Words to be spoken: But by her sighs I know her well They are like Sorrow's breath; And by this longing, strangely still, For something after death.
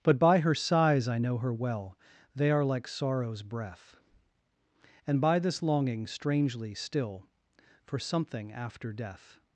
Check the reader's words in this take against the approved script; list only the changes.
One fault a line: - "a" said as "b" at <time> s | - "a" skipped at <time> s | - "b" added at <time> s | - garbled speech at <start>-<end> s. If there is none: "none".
none